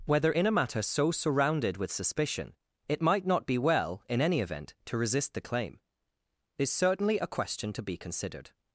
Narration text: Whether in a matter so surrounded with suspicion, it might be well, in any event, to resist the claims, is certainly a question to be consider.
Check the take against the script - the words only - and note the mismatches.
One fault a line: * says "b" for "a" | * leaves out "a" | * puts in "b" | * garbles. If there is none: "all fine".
* puts in "not"
* says "claim" for "claims"
* says "considered" for "consider"